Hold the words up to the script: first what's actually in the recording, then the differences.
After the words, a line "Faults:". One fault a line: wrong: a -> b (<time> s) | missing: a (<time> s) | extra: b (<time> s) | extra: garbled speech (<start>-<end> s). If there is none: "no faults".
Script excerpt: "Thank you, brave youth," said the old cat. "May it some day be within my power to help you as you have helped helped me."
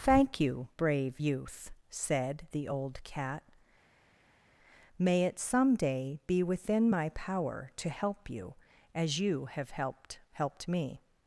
"Thank you, brave youth," said the old cat. "May it some day be within my power to help you as you have helped helped me."
Faults:
no faults